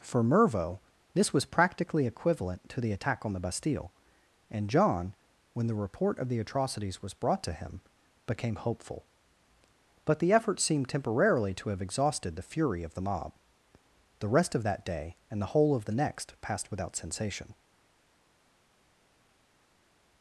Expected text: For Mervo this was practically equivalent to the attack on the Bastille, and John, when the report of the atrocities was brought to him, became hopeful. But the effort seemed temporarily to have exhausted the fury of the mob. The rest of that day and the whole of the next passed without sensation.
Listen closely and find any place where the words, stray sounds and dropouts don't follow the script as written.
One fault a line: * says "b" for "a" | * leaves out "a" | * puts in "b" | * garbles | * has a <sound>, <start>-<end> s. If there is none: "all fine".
all fine